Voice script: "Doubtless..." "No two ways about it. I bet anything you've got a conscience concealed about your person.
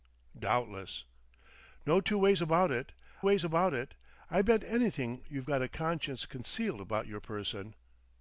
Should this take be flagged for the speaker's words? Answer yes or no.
yes